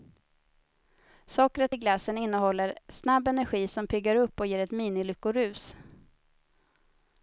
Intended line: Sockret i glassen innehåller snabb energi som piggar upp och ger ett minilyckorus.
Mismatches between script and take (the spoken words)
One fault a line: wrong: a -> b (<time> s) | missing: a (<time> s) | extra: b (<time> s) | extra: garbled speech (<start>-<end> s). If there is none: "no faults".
no faults